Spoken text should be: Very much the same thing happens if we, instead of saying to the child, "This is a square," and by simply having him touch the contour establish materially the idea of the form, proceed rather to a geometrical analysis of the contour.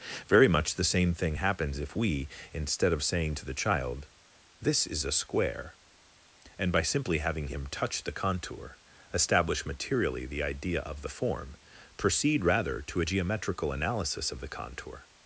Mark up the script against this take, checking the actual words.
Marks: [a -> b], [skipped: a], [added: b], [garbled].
Very much the same thing happens if we, instead of saying to the child, "This is a square," and by simply having him touch the contour establish materially the idea of the form, proceed rather to a geometrical analysis of the contour.